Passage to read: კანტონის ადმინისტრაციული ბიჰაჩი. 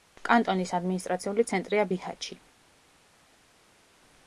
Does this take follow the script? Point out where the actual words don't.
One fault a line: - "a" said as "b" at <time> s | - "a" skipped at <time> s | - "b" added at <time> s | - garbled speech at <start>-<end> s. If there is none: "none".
- "ცენტრია" added at 1.5 s